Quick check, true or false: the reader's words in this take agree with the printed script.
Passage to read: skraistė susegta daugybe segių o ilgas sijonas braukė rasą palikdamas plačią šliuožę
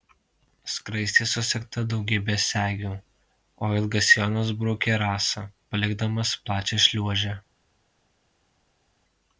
true